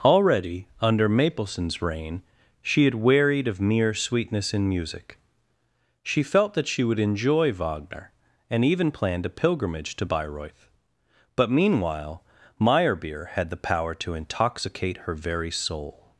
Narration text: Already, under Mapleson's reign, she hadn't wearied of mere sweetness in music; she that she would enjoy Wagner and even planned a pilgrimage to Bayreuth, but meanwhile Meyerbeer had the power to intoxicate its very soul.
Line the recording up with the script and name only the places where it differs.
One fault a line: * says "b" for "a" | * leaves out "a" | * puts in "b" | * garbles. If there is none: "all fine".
* says "had" for "hadn't"
* puts in "felt"
* says "her" for "its"